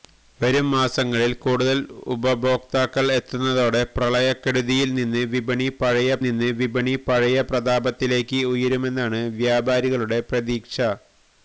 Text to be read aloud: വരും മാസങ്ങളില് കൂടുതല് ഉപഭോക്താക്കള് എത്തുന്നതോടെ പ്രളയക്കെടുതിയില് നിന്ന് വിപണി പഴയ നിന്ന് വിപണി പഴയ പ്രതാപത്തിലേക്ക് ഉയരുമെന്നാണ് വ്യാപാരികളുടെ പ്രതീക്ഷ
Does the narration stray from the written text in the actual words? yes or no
no